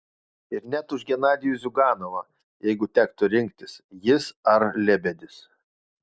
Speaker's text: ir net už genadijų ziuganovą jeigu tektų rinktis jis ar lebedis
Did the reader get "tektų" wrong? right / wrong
right